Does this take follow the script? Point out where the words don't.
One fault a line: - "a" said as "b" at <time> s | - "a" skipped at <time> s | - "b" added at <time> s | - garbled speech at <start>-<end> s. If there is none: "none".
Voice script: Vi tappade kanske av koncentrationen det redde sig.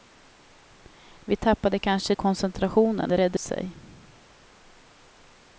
none